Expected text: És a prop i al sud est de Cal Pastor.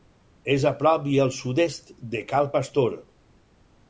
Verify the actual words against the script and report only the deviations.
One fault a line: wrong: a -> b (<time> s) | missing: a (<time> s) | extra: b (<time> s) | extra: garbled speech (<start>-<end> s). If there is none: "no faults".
no faults